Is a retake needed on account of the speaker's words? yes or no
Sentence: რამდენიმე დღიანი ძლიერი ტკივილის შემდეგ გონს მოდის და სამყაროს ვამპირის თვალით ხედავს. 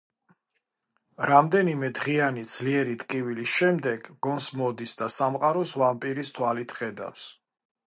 no